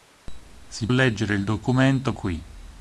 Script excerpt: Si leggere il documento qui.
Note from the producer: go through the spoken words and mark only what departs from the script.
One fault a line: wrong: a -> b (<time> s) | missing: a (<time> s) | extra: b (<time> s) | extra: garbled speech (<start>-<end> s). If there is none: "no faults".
no faults